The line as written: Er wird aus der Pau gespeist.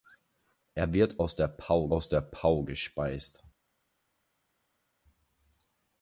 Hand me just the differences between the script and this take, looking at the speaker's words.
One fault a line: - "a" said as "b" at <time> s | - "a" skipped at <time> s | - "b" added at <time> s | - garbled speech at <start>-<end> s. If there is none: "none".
- "aus der Pau" added at 1.9 s